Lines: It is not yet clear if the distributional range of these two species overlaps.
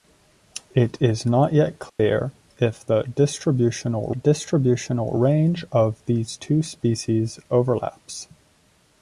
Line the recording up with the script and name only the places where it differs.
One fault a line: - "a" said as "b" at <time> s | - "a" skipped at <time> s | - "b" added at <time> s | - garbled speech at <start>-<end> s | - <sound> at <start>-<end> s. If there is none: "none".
- dropout at 1.9-2.0 s
- "distributional" added at 4.1 s